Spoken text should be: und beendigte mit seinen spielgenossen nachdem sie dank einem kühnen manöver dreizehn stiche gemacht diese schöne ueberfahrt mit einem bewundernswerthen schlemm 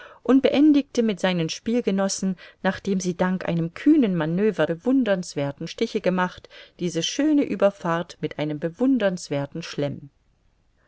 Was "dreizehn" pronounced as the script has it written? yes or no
no